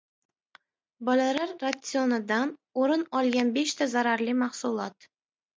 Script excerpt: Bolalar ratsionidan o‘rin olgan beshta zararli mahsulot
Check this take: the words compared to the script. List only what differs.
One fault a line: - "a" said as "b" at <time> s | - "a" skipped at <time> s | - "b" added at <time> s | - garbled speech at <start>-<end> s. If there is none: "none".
none